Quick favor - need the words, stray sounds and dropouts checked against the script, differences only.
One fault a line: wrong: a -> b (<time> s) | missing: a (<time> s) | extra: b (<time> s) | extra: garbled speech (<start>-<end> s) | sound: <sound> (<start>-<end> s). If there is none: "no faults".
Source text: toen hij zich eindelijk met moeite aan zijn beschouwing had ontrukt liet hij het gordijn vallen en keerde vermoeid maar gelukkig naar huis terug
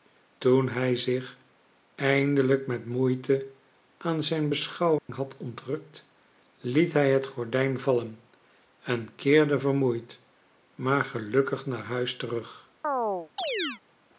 sound: dropout (5.0-5.1 s)
sound: chirp (12.8-13.8 s)